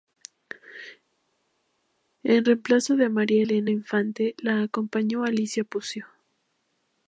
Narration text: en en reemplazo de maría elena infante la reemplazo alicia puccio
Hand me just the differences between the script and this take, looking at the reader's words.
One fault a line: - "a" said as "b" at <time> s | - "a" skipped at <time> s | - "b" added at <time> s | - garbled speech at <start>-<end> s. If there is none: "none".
- "en" skipped at 2.4 s
- "reemplazo" said as "acompañó" at 4.6 s